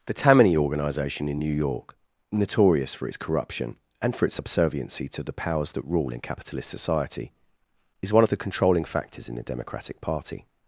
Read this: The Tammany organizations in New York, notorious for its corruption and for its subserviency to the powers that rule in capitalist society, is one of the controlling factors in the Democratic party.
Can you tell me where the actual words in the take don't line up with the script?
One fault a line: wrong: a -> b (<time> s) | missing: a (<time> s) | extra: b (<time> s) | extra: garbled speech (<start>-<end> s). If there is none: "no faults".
wrong: organizations -> organization (0.6 s)